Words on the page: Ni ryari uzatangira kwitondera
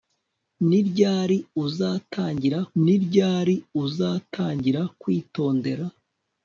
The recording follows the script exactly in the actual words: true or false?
false